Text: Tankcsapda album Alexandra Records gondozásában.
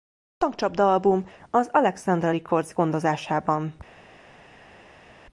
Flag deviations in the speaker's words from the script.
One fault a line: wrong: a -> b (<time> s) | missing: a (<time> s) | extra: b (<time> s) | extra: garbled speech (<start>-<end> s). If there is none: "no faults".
extra: az (1.5 s)